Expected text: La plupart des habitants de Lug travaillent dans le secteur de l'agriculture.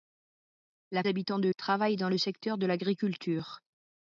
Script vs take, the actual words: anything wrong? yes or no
yes